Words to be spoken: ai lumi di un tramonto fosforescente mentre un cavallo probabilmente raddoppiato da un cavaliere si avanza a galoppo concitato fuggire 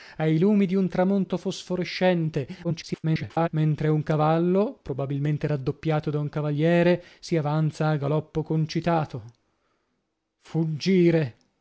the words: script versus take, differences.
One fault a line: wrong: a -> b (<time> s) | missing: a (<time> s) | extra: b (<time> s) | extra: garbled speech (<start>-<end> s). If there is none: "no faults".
extra: garbled speech (2.6-3.5 s)